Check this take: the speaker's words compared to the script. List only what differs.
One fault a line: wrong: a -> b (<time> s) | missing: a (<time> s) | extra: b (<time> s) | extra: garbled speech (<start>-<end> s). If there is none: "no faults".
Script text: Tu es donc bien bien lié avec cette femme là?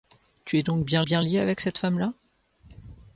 no faults